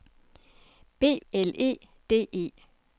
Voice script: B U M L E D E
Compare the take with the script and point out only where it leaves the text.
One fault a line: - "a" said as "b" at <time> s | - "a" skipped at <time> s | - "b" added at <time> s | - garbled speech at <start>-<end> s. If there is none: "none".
- "U M" skipped at 1.2 s